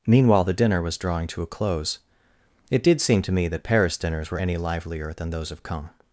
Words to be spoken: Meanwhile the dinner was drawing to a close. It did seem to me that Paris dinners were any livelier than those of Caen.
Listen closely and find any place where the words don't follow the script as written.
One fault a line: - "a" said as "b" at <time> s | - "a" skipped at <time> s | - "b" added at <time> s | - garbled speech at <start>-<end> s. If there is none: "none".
none